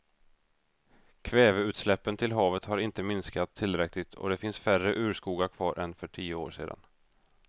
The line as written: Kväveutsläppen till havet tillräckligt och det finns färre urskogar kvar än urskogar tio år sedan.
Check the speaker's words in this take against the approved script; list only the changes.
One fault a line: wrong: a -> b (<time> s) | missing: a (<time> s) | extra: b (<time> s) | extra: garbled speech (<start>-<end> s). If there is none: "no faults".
extra: har inte minskat (2.6 s)
wrong: urskogar -> för (5.9 s)